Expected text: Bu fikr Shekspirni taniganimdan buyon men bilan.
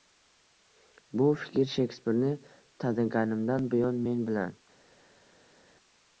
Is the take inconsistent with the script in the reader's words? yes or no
no